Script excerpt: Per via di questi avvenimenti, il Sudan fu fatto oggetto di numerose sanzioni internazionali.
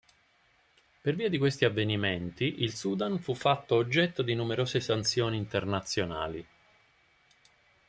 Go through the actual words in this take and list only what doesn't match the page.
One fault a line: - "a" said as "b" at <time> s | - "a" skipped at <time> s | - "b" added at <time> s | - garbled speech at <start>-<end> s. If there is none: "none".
none